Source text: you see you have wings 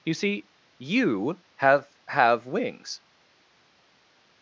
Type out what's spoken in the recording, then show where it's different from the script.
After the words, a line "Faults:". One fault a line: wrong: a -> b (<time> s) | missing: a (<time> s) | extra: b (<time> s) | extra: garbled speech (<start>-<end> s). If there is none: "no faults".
you see you have have wings
Faults:
extra: have (2.1 s)